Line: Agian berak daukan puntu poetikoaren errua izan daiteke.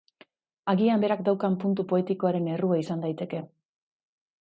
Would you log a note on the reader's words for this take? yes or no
no